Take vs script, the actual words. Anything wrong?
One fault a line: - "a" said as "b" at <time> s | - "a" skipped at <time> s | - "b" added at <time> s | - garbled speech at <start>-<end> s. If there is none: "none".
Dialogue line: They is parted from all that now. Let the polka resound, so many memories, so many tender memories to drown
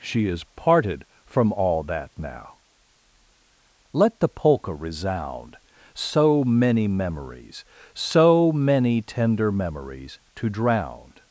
- "They" said as "She" at 0.0 s